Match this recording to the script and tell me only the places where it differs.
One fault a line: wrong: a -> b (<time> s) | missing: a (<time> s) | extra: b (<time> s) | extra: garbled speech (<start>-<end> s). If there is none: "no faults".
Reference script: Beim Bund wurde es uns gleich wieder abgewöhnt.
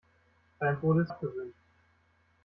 missing: Bund (0.8 s)
missing: uns gleich wieder (1.1 s)